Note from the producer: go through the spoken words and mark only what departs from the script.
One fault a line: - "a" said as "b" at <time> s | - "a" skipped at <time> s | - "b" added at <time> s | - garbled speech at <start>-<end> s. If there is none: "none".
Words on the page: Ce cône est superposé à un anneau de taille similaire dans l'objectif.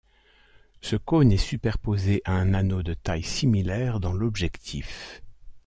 none